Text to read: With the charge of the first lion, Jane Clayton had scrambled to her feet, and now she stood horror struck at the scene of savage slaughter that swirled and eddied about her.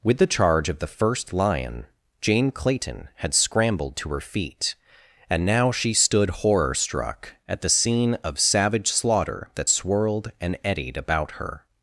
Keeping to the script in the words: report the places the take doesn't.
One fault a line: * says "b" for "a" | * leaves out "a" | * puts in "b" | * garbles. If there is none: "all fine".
all fine